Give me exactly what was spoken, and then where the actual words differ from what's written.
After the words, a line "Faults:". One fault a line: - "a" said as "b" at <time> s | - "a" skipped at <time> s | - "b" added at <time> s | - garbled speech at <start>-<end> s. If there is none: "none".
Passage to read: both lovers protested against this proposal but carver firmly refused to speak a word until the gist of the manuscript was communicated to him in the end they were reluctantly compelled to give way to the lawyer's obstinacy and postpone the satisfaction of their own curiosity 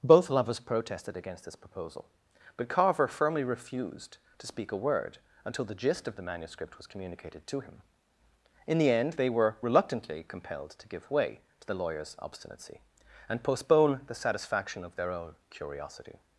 both lovers protested against this proposal but carver firmly refused to speak a word until the gist of the manuscript was communicated to him in the end they were reluctantly compelled to give way to the lawyer's obstinacy and postpone the satisfaction of their own curiosity
Faults:
none